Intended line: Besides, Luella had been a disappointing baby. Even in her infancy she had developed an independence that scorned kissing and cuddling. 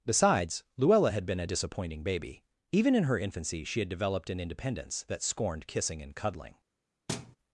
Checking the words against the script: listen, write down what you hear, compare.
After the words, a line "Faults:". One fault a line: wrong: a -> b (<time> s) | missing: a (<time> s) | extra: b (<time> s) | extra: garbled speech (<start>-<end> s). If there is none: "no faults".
Besides, Luella had been a disappointing baby. Even in her infancy she had developed an independence that scorned kissing and cuddling.
Faults:
no faults